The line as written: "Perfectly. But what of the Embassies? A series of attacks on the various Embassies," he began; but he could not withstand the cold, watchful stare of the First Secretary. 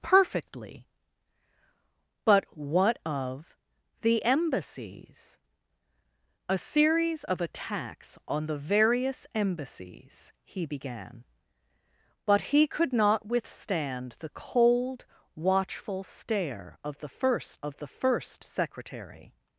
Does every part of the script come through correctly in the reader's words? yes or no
no